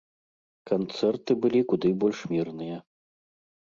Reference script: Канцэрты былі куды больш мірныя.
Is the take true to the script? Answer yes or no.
yes